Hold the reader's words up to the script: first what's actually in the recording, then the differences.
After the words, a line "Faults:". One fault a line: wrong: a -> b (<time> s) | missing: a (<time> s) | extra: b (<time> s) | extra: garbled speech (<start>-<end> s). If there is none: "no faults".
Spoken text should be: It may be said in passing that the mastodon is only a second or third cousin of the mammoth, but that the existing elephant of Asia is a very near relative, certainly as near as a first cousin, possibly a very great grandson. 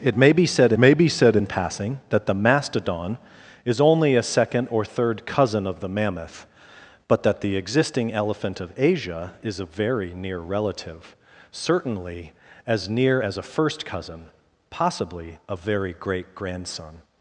It may be said may be said in passing that the mastodon is only a second or third cousin of the mammoth, but that the existing elephant of Asia is a very near relative, certainly as near as a first cousin, possibly a very great grandson.
Faults:
extra: may be said (0.8 s)